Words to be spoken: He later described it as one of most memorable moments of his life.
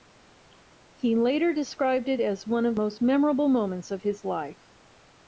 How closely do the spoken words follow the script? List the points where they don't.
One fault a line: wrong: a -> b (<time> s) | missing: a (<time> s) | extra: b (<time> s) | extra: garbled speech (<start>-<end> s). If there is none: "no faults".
no faults